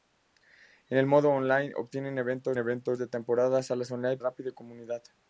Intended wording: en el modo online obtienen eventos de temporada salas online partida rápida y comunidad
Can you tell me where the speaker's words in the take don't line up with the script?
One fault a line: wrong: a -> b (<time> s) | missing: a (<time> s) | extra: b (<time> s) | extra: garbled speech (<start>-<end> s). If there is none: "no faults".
extra: eventos (2.6 s)
missing: partida (4.2 s)